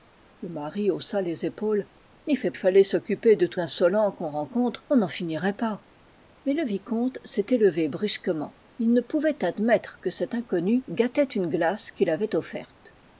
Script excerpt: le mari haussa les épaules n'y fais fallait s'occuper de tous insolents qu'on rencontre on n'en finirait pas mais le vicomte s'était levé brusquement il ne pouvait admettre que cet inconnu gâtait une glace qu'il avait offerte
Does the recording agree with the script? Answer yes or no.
yes